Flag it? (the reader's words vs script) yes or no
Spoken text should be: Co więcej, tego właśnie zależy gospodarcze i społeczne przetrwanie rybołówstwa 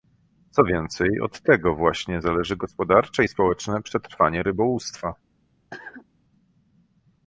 yes